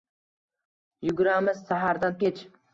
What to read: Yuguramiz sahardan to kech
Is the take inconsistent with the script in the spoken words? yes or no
yes